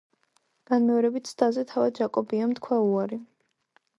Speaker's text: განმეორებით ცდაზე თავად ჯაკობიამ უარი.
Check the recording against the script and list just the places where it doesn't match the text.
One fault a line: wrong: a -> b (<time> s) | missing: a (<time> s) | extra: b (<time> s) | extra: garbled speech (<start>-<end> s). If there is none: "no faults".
extra: თქვა (2.6 s)